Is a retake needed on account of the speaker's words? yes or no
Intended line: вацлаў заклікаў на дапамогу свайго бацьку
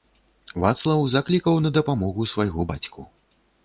no